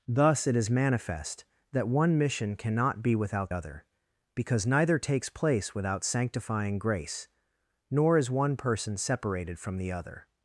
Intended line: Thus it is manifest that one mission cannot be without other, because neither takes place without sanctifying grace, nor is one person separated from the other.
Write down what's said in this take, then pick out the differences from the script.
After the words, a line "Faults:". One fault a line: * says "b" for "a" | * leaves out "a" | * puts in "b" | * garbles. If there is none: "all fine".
Thus it is manifest that one mission cannot be without other, because neither takes place without sanctifying grace, nor is one person separated from the other.
Faults:
all fine